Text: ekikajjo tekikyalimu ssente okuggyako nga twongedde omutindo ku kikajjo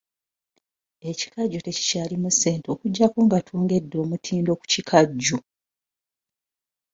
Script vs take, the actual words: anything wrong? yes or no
no